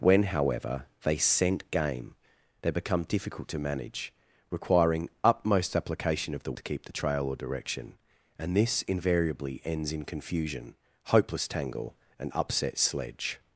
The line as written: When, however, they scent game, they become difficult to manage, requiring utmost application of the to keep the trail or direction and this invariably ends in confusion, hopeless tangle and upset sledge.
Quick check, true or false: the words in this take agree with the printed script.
true